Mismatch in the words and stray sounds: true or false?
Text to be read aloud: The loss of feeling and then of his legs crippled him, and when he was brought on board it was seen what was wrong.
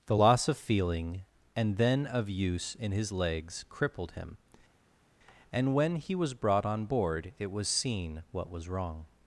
true